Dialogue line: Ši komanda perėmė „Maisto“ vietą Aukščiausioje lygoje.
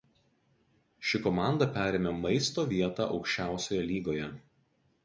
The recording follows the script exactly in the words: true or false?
true